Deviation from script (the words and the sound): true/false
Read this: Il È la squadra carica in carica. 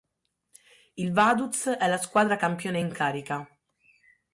true